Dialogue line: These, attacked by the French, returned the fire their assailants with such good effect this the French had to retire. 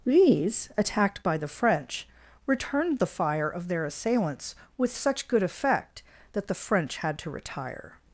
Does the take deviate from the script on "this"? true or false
true